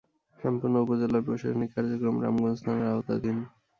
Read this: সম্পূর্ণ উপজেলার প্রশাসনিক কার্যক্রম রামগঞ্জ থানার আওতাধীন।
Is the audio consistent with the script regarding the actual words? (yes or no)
yes